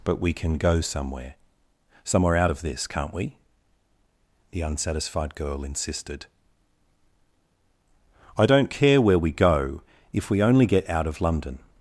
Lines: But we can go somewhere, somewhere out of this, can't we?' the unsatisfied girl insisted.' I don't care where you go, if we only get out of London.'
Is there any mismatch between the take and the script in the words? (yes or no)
yes